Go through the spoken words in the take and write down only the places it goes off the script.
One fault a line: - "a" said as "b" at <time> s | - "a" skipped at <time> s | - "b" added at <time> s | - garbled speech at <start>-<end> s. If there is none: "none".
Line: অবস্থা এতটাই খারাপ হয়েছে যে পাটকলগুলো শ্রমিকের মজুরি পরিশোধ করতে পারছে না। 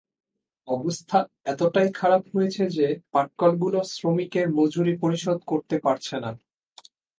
none